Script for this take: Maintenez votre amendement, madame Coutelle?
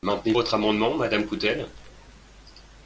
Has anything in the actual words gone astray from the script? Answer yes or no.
no